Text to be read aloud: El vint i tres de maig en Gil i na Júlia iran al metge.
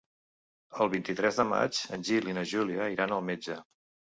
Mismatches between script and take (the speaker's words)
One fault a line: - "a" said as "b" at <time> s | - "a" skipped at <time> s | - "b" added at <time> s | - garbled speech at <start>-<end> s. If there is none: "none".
none